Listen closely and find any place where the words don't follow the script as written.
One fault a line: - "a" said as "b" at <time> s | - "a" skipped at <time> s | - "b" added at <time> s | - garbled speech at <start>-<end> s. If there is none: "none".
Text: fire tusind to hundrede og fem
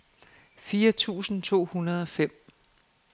none